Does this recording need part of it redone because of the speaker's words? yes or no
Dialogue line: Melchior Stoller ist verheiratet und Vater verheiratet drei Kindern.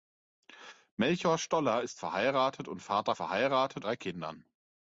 no